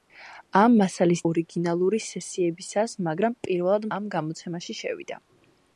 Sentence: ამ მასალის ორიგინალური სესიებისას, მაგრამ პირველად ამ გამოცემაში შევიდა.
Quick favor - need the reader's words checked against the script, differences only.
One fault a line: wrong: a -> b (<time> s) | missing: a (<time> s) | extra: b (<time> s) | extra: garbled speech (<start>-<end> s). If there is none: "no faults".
no faults